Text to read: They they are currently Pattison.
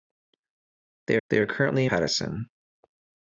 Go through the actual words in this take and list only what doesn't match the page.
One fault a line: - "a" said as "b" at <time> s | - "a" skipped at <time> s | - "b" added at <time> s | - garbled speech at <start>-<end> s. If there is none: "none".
none